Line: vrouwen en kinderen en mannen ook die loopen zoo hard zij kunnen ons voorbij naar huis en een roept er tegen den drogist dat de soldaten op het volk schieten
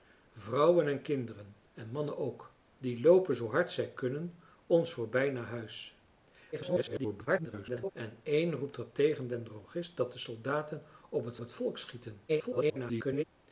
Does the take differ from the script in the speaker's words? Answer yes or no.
yes